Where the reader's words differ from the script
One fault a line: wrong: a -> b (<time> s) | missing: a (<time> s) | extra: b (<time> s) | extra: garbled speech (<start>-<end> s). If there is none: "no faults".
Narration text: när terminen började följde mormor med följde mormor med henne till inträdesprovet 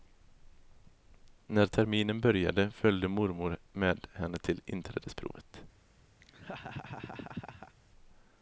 missing: följde mormor med (4.1 s)